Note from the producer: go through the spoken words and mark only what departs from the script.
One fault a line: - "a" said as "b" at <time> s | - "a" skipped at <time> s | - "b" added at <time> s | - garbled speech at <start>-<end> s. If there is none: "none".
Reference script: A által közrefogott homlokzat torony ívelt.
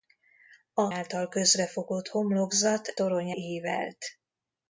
none